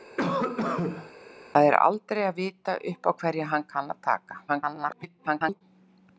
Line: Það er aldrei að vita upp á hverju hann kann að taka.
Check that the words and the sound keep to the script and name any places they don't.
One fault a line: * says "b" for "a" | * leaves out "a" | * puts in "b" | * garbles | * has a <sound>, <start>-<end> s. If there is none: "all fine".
* has a cough, 0.2-1.1 s
* garbles